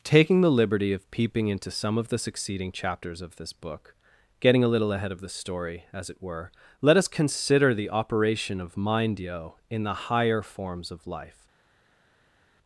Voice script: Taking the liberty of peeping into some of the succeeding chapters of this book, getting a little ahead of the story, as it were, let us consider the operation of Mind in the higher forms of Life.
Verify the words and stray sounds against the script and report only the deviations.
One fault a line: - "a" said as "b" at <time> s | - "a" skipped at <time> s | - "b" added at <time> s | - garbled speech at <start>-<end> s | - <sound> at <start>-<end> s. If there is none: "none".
- "yo" added at 9.2 s